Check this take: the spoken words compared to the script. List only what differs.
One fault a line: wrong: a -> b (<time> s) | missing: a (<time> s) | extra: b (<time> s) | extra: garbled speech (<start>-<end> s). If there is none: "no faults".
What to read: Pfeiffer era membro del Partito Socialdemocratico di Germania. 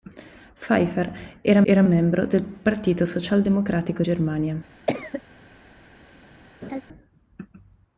extra: era (1.6 s)
missing: di (4.0 s)